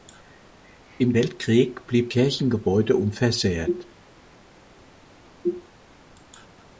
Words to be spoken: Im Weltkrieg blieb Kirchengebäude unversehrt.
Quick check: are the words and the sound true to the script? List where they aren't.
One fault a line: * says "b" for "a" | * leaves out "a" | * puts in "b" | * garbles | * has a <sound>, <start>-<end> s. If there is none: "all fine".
all fine